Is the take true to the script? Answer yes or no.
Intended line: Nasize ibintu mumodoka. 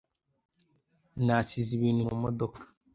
yes